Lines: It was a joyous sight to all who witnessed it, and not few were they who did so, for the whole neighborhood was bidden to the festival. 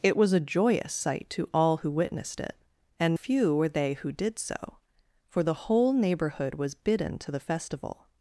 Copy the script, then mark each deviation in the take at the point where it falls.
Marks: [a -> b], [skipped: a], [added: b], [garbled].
It was a joyous sight to all who witnessed it, and [skipped: not] few were they who did so, for the whole neighborhood was bidden to the festival.